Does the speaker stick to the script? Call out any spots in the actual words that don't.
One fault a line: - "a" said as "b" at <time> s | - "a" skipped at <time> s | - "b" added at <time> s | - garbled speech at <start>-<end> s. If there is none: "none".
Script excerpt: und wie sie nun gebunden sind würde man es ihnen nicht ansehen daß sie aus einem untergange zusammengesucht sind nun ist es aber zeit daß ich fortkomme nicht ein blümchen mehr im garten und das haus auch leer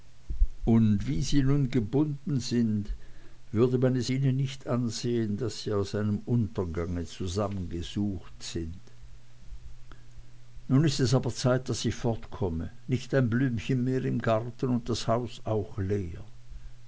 none